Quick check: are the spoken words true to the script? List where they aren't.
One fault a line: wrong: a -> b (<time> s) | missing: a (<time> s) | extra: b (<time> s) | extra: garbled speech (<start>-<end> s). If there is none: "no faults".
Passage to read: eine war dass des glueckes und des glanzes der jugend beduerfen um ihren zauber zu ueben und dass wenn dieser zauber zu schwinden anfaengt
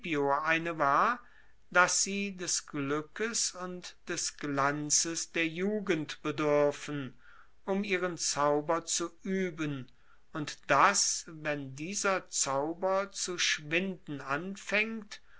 extra: sie (2.0 s)